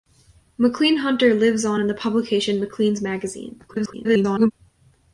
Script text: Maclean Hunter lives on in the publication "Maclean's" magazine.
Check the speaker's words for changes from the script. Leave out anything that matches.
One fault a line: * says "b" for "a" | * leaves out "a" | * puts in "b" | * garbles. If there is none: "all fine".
* garbles